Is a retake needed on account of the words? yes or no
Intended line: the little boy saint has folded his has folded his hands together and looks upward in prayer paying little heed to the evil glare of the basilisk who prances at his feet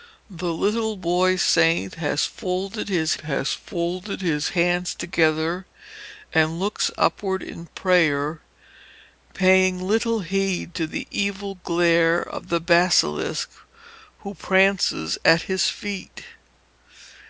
no